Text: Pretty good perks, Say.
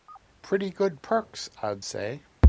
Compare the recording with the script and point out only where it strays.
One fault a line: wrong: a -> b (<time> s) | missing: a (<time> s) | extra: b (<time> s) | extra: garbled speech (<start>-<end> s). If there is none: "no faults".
extra: I'd (1.6 s)